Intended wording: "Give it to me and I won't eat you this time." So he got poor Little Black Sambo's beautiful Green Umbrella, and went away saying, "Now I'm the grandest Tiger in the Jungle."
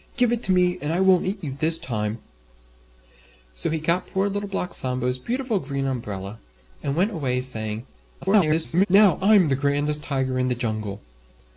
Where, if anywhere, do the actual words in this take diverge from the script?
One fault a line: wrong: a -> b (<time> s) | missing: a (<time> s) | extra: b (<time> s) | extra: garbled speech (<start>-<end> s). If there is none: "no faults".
extra: garbled speech (8.2-8.9 s)